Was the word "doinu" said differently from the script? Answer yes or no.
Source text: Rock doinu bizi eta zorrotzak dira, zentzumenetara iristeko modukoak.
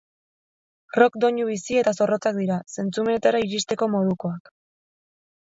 no